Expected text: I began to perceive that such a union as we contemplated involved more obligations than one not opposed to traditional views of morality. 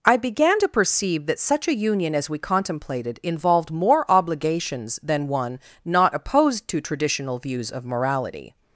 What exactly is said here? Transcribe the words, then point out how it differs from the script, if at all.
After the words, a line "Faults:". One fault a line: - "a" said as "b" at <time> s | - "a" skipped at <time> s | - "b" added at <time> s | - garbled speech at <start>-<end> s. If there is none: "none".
I began to perceive that such a union as we contemplated involved more obligations than one not opposed to traditional views of morality.
Faults:
none